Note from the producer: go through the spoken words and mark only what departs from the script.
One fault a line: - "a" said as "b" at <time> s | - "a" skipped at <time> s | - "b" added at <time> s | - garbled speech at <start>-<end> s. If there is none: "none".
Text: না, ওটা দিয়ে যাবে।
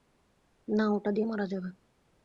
- "মারা" added at 1.2 s